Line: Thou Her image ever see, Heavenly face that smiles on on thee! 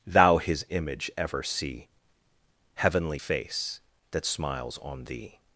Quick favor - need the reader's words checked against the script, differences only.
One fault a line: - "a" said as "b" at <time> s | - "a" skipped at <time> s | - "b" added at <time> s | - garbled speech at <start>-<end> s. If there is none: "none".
- "Her" said as "His" at 0.4 s
- "on" skipped at 5.0 s